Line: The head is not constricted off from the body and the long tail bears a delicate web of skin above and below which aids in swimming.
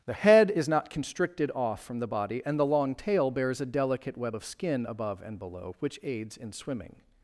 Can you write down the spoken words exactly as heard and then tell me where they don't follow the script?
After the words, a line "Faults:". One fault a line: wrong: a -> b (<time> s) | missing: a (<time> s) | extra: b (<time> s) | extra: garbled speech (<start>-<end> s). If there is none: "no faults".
The head is not constricted off from the body and the long tail bears a delicate web of skin above and below which aids in swimming.
Faults:
no faults